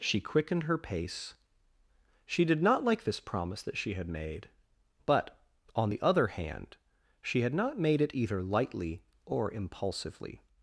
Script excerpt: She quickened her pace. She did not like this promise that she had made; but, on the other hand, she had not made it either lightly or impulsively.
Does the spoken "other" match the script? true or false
true